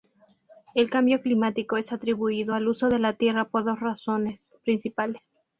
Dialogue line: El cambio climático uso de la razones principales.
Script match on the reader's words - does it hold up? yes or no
no